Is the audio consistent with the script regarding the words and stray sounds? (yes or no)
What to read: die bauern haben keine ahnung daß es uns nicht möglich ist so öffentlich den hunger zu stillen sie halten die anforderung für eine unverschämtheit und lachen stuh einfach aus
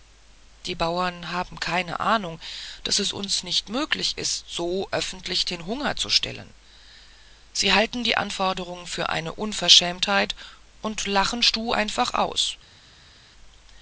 yes